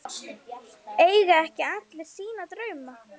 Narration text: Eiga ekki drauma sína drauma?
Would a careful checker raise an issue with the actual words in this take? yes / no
yes